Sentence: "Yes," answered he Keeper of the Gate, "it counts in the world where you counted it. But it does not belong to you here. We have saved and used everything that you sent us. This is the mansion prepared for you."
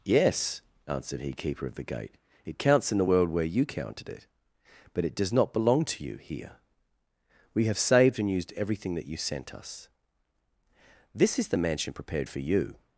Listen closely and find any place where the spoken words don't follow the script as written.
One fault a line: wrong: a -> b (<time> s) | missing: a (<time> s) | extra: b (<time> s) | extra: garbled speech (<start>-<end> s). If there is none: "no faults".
no faults